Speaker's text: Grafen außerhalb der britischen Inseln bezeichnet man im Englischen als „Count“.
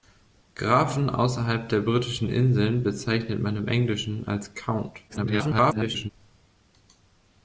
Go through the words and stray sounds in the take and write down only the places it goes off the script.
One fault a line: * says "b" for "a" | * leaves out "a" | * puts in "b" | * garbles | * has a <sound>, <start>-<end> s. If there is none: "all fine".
* garbles